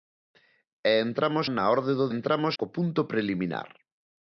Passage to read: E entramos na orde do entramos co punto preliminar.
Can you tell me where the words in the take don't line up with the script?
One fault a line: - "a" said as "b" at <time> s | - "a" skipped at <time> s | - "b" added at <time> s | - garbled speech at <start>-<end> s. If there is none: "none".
none